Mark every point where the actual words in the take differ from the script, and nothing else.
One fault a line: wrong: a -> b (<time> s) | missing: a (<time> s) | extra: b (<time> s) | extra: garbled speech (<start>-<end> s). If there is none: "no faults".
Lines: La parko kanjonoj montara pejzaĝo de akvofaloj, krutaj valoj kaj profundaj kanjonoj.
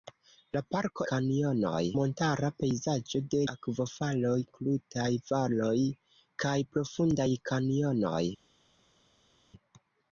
no faults